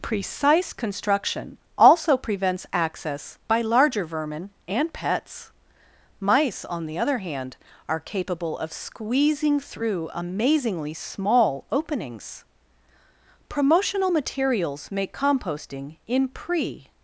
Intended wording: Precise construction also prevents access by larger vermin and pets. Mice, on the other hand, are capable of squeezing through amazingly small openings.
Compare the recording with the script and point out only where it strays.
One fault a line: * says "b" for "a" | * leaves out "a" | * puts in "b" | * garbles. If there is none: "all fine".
* puts in "Promotional materials make composting in pre"